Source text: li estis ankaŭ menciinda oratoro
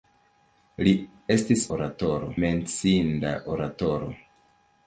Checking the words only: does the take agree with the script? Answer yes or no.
no